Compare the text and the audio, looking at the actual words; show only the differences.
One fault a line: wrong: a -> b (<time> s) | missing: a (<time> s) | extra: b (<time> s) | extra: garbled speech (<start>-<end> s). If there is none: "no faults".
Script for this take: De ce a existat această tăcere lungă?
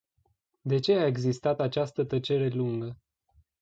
no faults